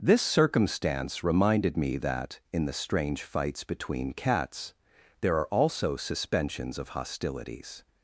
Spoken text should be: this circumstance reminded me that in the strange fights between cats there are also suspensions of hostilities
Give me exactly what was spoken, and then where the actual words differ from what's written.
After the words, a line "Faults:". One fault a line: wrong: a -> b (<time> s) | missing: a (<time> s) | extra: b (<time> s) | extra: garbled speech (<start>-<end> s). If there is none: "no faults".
this circumstance reminded me that in the strange fights between cats there are also suspensions of hostilities
Faults:
no faults